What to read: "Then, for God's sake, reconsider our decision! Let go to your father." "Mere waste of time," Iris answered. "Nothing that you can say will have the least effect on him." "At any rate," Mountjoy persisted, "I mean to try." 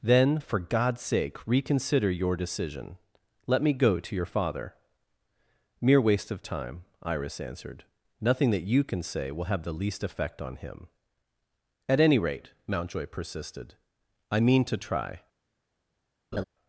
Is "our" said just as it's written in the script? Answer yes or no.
no